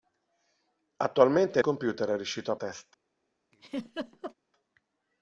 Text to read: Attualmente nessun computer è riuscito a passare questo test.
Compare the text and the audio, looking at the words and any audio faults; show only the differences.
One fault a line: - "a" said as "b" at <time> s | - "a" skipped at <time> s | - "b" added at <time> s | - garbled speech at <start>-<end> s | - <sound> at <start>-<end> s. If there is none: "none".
- "nessun" skipped at 1.6 s
- "passare questo" skipped at 2.6 s
- laugh at 3.5-4.3 s